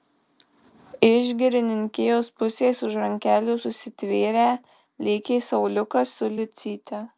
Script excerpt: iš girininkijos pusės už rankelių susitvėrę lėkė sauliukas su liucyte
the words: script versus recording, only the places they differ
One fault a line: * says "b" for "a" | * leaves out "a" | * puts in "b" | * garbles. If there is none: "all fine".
all fine